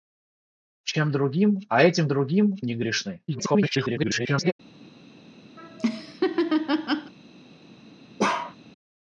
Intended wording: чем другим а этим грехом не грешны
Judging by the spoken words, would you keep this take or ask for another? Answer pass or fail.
fail